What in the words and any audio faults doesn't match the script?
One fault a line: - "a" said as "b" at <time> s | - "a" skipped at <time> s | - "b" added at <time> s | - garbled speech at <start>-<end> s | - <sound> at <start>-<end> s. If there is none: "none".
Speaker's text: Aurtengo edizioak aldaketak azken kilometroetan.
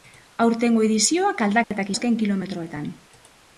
- dropout at 1.6-1.7 s